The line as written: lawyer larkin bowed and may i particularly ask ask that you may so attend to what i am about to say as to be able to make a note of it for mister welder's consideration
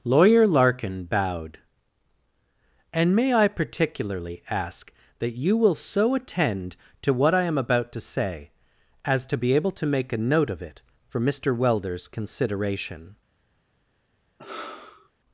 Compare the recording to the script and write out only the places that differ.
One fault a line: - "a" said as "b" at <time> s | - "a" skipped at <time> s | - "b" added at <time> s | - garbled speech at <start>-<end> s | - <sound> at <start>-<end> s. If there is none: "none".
- "ask" skipped at 4.9 s
- "may" said as "will" at 5.5 s
- sigh at 14.4-15.1 s